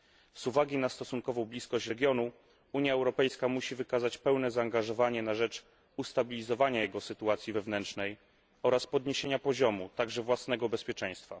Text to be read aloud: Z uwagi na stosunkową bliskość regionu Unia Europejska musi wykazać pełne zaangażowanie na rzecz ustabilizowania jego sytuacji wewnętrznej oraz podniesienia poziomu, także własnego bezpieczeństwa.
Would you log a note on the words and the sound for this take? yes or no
no